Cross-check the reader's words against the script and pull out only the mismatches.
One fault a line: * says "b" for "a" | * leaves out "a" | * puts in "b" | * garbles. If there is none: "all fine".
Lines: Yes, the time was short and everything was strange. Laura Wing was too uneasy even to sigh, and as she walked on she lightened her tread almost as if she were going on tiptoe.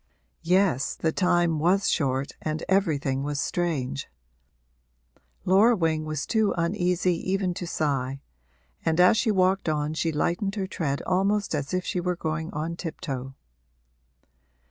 all fine